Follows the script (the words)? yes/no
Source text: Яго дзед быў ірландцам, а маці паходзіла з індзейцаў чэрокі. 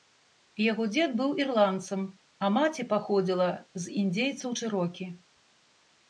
yes